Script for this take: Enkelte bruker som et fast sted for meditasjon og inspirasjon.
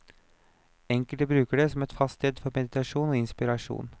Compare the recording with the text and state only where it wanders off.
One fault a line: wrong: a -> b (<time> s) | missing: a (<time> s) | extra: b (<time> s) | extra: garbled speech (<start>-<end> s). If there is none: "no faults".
extra: det (1.6 s)